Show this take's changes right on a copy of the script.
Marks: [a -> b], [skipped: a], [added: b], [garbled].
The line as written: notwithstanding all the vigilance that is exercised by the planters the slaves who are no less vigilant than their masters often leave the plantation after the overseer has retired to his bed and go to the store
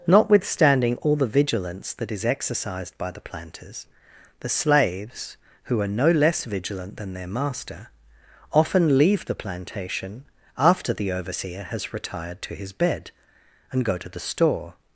notwithstanding all the vigilance that is exercised by the planters the slaves who are no less vigilant than their [masters -> master] often leave the plantation after the overseer has retired to his bed and go to the store